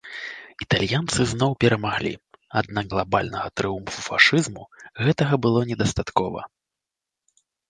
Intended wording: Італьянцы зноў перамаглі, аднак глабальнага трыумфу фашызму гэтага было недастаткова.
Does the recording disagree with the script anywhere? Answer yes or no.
no